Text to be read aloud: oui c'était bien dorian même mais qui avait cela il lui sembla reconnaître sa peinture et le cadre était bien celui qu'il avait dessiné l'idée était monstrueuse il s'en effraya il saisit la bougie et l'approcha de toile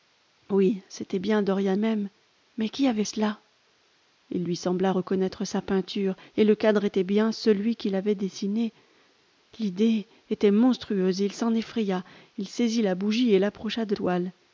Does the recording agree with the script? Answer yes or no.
yes